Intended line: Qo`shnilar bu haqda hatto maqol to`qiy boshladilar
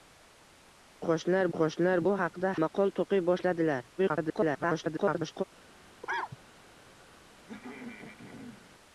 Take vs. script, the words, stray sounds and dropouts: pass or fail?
fail